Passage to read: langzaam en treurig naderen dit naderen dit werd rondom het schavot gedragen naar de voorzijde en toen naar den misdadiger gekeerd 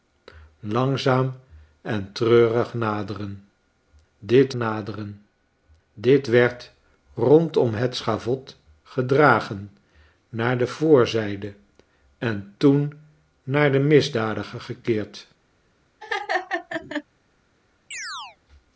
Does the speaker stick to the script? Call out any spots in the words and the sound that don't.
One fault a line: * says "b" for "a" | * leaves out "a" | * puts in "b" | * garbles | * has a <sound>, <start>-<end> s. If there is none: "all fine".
* has a laugh, 16.0-17.0 s
* has a chirp, 17.9-18.4 s